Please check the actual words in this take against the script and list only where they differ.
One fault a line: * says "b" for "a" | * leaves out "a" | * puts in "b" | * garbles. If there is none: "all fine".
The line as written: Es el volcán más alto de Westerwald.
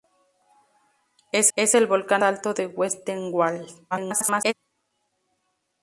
* puts in "es"
* leaves out "más"
* garbles